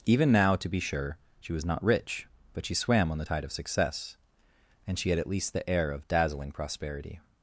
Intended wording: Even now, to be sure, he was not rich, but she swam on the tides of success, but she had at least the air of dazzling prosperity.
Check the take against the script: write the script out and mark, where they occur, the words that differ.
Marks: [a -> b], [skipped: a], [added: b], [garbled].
Even now, to be sure, [he -> she] was not rich, but she swam on the [tides -> tide] of success, [but -> and] she had at least the air of dazzling prosperity.